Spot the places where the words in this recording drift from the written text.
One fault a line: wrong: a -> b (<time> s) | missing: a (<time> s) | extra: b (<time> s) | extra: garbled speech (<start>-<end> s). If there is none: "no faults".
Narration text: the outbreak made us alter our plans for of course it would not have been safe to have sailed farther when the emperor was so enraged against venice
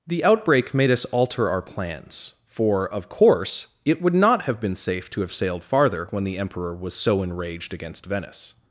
no faults